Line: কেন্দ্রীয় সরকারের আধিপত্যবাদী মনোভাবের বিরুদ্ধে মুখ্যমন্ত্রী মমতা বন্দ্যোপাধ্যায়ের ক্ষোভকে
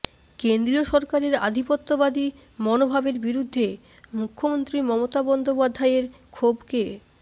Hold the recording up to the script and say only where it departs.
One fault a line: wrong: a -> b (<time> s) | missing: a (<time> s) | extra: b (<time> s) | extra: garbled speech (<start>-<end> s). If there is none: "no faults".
no faults